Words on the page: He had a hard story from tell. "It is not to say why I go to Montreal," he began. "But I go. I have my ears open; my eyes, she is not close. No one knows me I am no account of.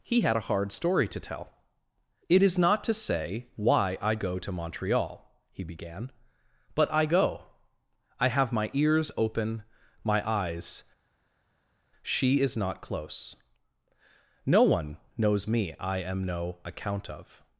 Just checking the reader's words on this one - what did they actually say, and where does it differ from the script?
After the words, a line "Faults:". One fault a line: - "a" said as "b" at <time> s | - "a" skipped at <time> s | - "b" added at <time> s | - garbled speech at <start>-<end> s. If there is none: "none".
He had a hard story to tell. "It is not to say why I go to Montreal," he began. "But I go. I have my ears open; my eyes, she is not close. No one knows me I am no account of.
Faults:
- "from" said as "to" at 1.1 s